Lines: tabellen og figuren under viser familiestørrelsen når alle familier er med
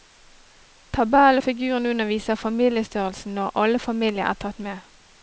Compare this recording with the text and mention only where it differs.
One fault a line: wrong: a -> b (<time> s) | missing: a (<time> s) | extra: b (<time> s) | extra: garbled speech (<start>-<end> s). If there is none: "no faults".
extra: tatt (4.4 s)